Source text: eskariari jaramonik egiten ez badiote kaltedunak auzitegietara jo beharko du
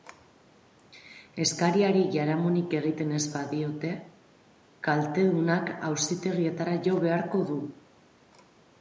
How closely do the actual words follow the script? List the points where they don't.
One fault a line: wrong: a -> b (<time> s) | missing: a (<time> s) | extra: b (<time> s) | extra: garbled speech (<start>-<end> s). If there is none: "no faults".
no faults